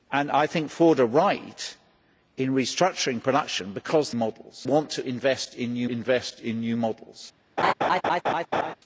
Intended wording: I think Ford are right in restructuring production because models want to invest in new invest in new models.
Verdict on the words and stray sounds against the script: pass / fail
fail